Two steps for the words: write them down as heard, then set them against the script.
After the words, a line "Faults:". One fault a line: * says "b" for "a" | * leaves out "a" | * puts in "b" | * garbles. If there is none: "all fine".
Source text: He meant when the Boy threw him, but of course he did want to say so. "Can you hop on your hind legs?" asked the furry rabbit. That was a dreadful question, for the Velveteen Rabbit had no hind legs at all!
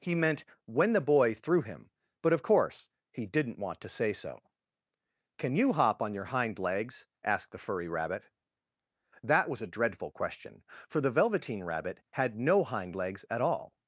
He meant when the Boy threw him, but of course he didn't want to say so. "Can you hop on your hind legs?" asked the furry rabbit. That was a dreadful question, for the Velveteen Rabbit had no hind legs at all!
Faults:
* says "didn't" for "did"